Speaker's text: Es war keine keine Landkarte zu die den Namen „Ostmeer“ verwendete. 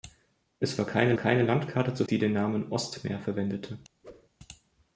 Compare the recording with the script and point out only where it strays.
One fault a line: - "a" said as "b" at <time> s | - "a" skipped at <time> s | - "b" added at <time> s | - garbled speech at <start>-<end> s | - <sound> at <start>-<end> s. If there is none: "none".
- whoosh at 4.0-4.3 s